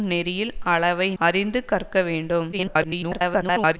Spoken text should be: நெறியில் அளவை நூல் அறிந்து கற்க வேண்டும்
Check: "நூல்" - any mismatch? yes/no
yes